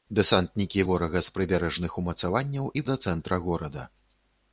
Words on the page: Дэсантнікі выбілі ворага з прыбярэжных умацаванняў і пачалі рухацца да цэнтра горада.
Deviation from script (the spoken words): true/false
true